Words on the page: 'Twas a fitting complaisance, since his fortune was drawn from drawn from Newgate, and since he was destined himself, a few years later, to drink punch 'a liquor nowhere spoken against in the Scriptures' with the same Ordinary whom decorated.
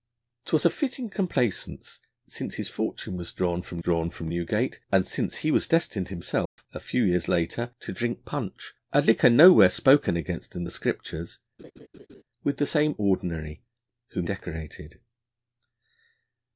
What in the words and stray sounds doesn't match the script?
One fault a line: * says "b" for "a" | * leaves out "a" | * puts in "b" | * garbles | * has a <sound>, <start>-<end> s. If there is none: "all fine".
* has a dropout, 6.5-6.6 s
* has a laugh, 11.6-12.2 s